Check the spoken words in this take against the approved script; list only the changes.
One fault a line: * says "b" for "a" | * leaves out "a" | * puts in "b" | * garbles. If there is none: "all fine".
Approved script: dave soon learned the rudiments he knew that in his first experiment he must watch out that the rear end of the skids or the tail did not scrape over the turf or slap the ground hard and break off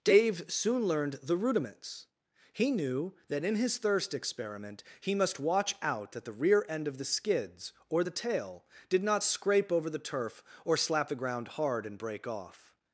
* says "thirst" for "first"